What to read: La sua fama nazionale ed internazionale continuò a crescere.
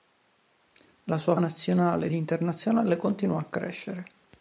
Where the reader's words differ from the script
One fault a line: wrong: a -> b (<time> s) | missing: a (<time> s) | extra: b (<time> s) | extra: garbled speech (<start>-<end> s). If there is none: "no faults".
missing: fama (1.4 s)